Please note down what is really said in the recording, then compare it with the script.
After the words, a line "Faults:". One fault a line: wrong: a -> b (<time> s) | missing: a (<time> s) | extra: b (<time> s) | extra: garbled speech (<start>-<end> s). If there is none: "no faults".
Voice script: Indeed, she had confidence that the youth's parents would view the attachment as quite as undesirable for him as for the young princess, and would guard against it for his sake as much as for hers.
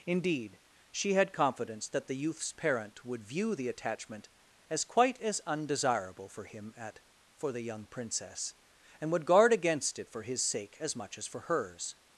Indeed, she had confidence that the youth's parent would view the attachment as quite as undesirable for him at for the young princess, and would guard against it for his sake as much as for hers.
Faults:
wrong: parents -> parent (2.5 s)
wrong: as -> at (6.8 s)